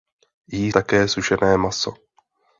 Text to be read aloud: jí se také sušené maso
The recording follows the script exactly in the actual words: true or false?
false